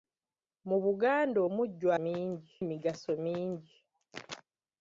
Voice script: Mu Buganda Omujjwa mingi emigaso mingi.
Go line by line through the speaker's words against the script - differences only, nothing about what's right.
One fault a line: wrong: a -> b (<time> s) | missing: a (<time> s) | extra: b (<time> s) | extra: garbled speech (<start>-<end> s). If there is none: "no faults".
no faults